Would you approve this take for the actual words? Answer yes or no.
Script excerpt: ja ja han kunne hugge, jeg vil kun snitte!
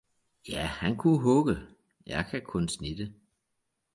no